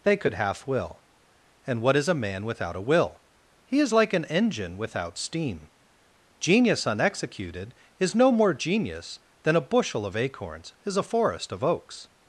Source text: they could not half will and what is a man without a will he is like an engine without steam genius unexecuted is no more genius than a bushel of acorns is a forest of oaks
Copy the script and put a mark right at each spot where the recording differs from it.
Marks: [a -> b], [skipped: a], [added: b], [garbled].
they could [skipped: not] half will and what is a man without a will he is like an engine without steam genius unexecuted is no more genius than a bushel of acorns is a forest of oaks